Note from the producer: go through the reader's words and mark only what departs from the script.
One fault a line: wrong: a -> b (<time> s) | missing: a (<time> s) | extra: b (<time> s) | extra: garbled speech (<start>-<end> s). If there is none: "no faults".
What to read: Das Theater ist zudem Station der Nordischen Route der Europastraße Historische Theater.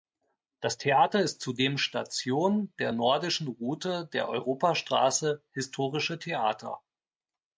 no faults